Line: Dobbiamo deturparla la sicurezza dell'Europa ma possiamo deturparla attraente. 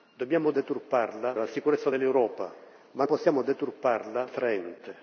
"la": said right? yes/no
yes